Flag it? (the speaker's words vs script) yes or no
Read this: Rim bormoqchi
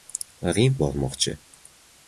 no